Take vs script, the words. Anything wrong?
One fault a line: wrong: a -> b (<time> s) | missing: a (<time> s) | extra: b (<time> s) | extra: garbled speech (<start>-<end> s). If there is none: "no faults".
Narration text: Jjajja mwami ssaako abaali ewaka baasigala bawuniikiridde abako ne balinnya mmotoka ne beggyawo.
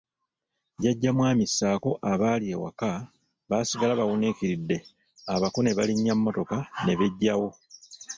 no faults